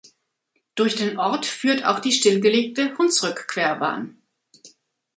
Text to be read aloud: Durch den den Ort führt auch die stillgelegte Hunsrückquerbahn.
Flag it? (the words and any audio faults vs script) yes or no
yes